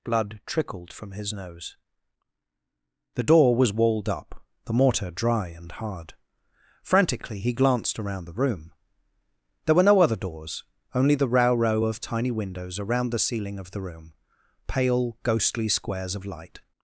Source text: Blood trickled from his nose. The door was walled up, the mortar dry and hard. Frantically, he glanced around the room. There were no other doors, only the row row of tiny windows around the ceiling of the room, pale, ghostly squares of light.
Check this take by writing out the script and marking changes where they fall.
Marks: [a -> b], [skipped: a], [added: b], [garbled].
Blood trickled from his nose. The door was walled up, the mortar dry and hard. Frantically, he glanced around the room. There were no other doors, only the row row of tiny windows around the ceiling of the room, pale, ghostly squares of light.